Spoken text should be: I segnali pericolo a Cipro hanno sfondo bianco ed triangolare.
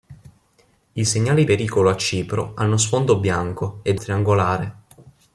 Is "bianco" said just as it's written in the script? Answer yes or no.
yes